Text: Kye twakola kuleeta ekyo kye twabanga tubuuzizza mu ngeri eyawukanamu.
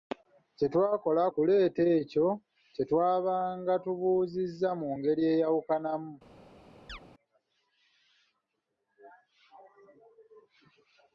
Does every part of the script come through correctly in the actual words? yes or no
yes